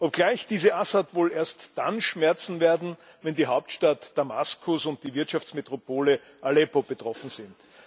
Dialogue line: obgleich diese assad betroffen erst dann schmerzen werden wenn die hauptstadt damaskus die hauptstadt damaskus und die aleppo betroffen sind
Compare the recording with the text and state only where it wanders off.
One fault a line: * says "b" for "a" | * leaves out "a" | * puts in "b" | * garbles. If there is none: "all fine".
* says "wohl" for "betroffen"
* leaves out "die hauptstadt damaskus"
* puts in "wirtschaftsmetropole"